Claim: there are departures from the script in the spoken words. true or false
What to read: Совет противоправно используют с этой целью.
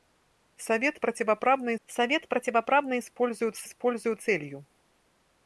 true